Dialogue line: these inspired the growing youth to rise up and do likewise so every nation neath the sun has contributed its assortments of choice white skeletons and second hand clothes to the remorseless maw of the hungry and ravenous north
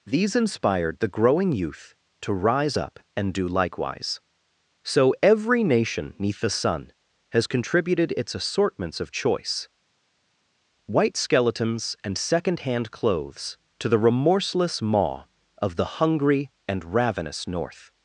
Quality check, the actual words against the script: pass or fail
pass